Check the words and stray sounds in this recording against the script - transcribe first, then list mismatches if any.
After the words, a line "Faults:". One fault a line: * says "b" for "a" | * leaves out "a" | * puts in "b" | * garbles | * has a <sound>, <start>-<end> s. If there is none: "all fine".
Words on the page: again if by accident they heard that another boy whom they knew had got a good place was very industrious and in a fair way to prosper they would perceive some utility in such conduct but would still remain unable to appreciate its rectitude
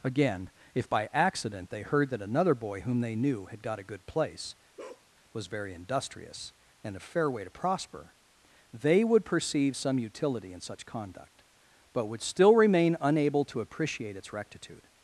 again if by accident they heard that another boy whom they knew had got a good place was very industrious and a fair way to prosper they would perceive some utility in such conduct but would still remain unable to appreciate its rectitude
Faults:
* has a bark, 4.8-5.1 s
* leaves out "in"